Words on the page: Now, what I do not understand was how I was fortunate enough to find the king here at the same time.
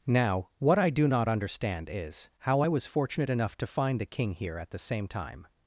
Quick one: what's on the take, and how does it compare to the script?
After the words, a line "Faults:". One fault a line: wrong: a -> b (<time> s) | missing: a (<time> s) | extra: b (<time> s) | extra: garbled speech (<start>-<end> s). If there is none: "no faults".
Now, what I do not understand is how I was fortunate enough to find the king here at the same time.
Faults:
wrong: was -> is (1.9 s)